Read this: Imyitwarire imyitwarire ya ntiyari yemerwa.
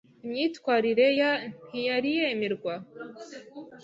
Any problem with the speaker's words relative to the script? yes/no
yes